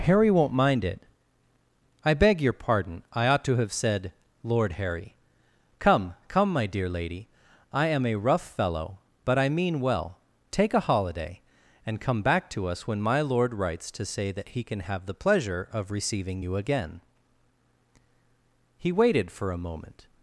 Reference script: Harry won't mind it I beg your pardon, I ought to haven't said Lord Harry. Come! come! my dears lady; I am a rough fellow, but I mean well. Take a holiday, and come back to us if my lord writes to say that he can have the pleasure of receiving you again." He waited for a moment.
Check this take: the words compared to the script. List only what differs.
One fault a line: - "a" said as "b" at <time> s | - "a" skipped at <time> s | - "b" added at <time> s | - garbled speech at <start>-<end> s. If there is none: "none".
- "haven't" said as "have" at 3.6 s
- "dears" said as "dear" at 6.7 s
- "if" said as "when" at 12.9 s